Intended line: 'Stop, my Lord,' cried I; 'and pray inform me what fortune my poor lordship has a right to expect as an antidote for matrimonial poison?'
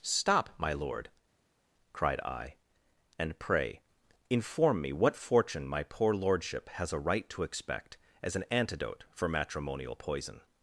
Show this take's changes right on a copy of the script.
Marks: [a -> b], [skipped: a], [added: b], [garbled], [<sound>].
'Stop, my Lord,' cried I; 'and pray inform me what fortune my poor lordship has a right to expect as an antidote for matrimonial poison?'